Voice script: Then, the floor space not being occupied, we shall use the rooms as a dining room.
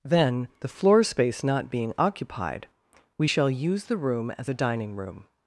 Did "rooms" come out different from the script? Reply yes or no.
yes